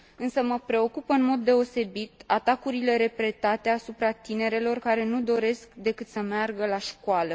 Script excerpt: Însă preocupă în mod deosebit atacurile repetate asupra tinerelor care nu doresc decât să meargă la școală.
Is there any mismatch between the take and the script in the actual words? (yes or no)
yes